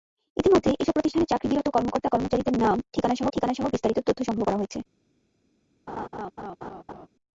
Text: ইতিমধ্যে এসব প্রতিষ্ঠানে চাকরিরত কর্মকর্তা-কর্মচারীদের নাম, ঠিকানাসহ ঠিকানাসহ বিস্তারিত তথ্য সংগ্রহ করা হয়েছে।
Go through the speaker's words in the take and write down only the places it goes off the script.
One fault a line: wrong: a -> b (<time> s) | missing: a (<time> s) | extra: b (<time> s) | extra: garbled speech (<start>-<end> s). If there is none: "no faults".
no faults